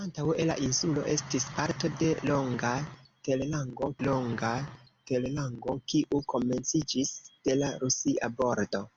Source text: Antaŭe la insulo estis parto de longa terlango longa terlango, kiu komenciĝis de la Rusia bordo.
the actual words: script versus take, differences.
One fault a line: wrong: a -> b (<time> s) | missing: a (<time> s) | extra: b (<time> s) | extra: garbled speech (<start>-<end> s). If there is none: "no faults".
no faults